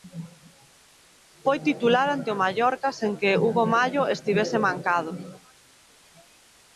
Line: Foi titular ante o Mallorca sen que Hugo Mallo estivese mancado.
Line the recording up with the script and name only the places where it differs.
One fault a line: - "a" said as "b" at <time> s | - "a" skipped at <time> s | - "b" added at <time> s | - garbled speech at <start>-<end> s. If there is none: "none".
none